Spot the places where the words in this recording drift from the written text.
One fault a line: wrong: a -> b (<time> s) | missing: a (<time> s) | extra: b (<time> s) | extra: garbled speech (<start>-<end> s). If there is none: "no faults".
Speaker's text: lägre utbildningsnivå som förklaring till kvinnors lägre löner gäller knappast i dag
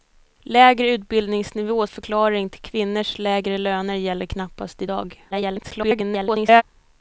missing: som (1.9 s)
extra: garbled speech (5.3-6.6 s)